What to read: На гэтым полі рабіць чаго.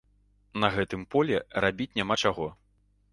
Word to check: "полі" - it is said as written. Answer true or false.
true